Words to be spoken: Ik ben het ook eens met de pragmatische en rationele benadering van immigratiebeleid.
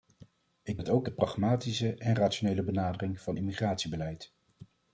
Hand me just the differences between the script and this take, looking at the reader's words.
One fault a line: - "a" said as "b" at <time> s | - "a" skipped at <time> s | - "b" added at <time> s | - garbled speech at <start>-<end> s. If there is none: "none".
- "ben" skipped at 0.8 s
- "eens met" skipped at 1.1 s